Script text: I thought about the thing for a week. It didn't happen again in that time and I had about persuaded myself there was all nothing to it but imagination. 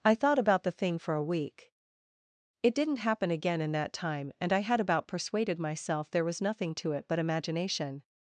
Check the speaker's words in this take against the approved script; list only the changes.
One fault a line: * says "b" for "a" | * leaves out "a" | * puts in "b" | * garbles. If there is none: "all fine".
* leaves out "all"